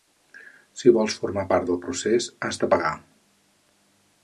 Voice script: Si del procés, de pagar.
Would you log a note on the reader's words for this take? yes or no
yes